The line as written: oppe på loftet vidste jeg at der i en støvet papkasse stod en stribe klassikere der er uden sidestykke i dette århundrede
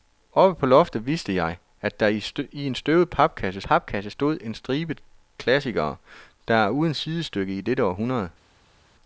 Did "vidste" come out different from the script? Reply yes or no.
no